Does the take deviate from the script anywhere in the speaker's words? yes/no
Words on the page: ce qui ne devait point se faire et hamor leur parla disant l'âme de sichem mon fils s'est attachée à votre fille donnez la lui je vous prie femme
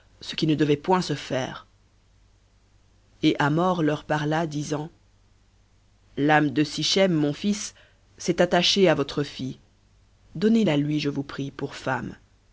yes